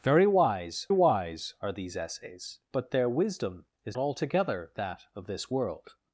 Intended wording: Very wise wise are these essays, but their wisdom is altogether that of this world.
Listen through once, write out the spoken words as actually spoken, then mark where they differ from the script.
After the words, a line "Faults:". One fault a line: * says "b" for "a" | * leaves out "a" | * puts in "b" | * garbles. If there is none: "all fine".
Very wise wise are these essays, but their wisdom is altogether that of this world.
Faults:
all fine